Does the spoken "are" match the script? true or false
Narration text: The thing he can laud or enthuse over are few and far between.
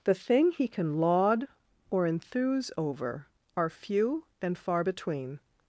true